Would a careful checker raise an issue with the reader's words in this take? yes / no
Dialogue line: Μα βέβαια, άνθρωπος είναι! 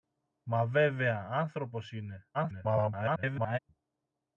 yes